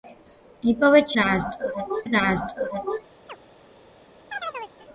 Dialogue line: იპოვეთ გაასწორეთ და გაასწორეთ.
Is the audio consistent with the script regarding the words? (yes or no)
yes